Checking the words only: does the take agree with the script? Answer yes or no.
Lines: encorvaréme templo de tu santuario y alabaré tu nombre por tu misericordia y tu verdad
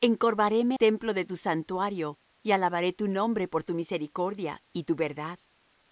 yes